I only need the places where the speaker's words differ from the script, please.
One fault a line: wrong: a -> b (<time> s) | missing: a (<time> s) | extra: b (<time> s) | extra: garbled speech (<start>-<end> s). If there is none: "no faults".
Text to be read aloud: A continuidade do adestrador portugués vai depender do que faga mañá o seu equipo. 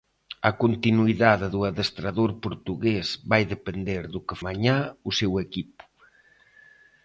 missing: faga (4.4 s)